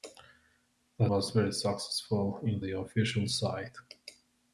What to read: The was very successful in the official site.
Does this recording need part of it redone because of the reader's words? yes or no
no